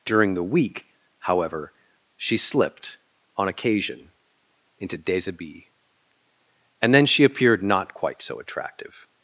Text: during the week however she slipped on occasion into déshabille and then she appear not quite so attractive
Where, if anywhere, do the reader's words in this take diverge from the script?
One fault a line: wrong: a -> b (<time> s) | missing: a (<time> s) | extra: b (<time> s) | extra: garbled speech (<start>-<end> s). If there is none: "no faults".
wrong: appear -> appeared (7.2 s)